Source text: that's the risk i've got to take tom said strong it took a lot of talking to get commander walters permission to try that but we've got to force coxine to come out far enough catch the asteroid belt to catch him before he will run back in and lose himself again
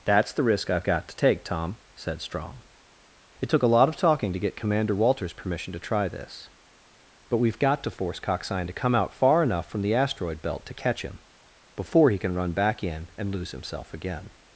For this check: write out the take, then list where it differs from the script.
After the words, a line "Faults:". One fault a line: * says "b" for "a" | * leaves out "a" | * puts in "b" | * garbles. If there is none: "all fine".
that's the risk i've got to take tom said strong it took a lot of talking to get commander walters permission to try this but we've got to force coxine to come out far enough from the asteroid belt to catch him before he can run back in and lose himself again
Faults:
* says "this" for "that"
* says "from" for "catch"
* says "can" for "will"